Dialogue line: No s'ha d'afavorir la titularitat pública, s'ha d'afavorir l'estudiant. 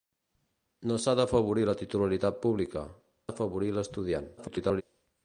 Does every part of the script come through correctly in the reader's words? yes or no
no